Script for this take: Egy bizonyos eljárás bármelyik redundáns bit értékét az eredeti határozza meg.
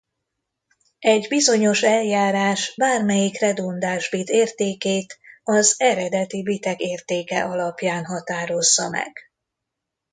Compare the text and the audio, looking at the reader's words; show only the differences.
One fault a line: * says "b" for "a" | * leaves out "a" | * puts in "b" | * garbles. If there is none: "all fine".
* puts in "bitek értéke alapján"